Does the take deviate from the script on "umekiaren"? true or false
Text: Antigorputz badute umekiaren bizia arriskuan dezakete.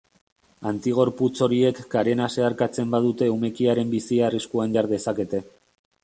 false